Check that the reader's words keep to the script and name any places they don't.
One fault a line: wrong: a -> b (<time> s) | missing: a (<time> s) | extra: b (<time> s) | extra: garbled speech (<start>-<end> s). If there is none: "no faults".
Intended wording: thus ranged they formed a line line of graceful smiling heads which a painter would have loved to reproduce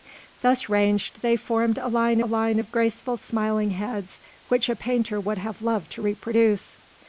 no faults